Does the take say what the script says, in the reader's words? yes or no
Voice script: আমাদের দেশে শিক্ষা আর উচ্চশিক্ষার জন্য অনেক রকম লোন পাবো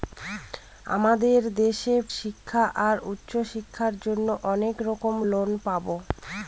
yes